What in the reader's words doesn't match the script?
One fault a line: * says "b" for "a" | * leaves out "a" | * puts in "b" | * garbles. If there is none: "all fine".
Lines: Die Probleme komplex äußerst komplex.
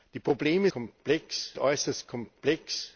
all fine